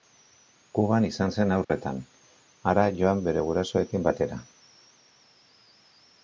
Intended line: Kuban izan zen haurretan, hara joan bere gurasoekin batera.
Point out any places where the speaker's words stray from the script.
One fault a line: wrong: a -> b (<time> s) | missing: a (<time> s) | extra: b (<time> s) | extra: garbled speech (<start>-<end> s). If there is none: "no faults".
no faults